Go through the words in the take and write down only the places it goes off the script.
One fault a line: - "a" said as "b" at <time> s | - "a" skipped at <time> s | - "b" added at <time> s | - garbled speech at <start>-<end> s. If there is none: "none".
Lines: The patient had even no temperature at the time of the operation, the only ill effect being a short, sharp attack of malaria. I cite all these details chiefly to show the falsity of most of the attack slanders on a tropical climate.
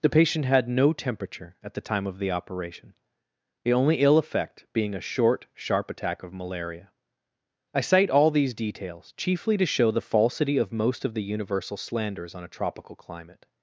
- "even" skipped at 0.7 s
- "attack" said as "universal" at 11.2 s